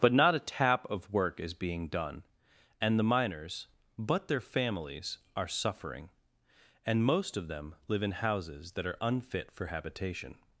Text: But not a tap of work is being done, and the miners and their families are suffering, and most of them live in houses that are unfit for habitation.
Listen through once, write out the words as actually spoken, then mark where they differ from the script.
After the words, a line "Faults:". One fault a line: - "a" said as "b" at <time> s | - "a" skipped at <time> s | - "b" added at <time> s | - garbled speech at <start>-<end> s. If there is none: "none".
But not a tap of work is being done, and the miners but their families are suffering, and most of them live in houses that are unfit for habitation.
Faults:
- "and" said as "but" at 4.0 s